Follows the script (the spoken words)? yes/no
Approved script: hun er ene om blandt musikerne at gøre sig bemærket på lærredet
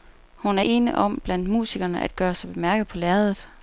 yes